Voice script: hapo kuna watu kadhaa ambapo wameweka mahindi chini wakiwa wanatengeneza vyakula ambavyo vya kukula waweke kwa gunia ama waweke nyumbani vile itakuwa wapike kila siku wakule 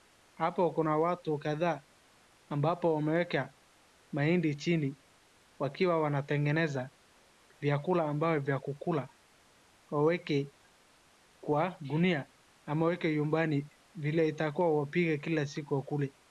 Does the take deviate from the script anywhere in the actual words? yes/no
no